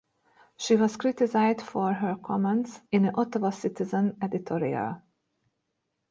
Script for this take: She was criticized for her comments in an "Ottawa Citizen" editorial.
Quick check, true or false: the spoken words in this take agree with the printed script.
true